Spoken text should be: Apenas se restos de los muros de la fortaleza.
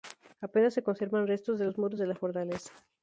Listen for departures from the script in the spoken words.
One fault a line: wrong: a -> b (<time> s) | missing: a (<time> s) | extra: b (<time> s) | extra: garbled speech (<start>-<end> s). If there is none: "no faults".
extra: conservan (0.8 s)